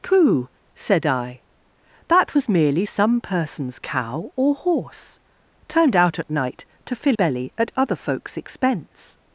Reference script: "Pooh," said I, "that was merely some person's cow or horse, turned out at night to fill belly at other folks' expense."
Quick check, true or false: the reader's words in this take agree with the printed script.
true